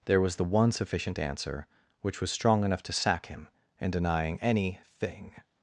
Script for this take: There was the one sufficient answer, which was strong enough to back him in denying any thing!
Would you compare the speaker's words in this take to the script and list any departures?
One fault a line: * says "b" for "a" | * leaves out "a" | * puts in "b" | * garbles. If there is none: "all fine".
* says "sack" for "back"